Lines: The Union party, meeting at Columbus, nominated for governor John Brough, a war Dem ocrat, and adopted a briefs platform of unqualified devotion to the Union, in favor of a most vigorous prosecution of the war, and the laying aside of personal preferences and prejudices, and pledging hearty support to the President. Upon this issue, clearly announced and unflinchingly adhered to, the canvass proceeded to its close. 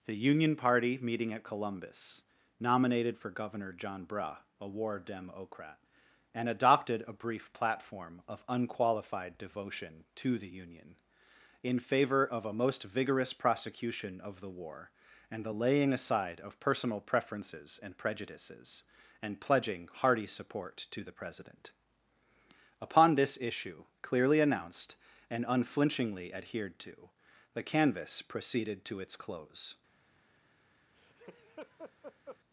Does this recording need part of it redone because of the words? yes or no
yes